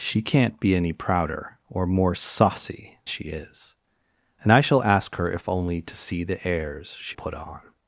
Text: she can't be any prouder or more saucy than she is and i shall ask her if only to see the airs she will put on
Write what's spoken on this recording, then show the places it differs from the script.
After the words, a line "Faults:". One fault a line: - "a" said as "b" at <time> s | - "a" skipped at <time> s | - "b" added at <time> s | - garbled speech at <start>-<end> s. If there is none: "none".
she can't be any prouder or more saucy she is and i shall ask her if only to see the airs she put on
Faults:
- "than" skipped at 3.0 s
- "will" skipped at 7.2 s